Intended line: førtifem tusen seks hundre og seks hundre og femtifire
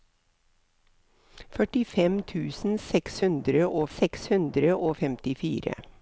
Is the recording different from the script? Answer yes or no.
no